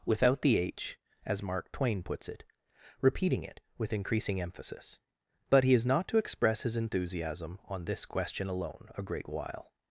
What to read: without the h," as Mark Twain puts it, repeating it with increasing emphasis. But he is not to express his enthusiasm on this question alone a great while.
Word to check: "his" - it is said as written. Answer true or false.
true